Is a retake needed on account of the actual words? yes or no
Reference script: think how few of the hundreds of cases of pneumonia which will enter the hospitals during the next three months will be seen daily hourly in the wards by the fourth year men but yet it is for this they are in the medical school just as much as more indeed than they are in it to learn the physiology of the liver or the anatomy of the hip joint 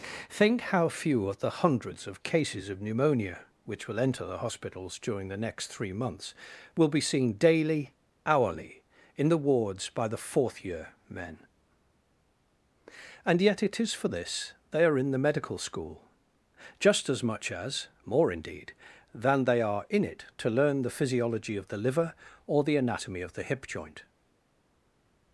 yes